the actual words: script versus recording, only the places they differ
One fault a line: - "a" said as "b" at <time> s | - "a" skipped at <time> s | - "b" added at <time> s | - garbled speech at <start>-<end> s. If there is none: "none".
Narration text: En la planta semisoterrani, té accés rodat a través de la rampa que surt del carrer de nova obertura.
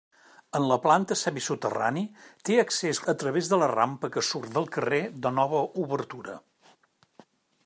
- "rodat" skipped at 3.0 s